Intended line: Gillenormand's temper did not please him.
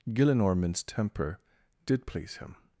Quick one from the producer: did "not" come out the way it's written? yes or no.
no